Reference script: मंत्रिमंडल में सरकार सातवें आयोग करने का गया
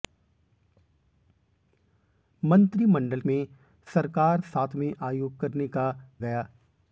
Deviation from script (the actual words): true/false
false